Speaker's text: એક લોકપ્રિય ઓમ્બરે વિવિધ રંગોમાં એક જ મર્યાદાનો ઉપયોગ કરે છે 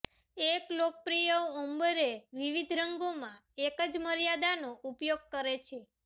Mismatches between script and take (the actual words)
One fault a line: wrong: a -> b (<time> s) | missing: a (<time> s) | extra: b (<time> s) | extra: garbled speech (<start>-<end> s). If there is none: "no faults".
no faults